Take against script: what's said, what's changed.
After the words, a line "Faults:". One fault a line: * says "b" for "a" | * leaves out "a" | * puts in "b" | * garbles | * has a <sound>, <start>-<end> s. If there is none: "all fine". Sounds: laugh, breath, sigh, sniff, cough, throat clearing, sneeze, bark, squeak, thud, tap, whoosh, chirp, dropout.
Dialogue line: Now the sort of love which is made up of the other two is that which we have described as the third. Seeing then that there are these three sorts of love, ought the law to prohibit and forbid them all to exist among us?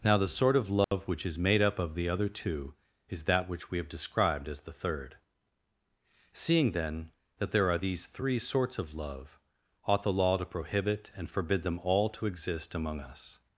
Now the sort of love which is made up of the other two is that which we have described as the third. Seeing then that there are these three sorts of love, ought the law to prohibit and forbid them all to exist among us?
Faults:
* has a dropout, 0.8-0.9 s